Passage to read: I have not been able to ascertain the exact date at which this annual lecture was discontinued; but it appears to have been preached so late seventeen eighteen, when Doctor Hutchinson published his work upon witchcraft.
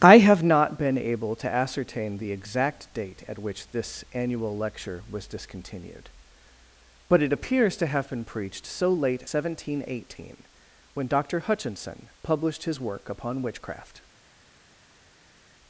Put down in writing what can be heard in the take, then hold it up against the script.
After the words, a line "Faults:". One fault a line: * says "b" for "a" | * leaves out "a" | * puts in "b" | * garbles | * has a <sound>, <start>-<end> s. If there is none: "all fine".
I have not been able to ascertain the exact date at which this annual lecture was discontinued; but it appears to have been preached so late seventeen eighteen, when Doctor Hutchinson published his work upon witchcraft.
Faults:
all fine